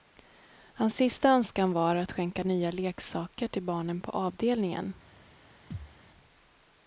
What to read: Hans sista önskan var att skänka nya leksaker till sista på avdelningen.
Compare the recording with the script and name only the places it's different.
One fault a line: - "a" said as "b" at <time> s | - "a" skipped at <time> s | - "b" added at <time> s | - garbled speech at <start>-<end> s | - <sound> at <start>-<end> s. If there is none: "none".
- "sista" said as "barnen" at 3.6 s
- thud at 5.7-6.0 s